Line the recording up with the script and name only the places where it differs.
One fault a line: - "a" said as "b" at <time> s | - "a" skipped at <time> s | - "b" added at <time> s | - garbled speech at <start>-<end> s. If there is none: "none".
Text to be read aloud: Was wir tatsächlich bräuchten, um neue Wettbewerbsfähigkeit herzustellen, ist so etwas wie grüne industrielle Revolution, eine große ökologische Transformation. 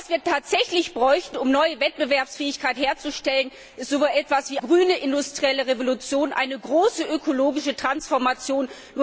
none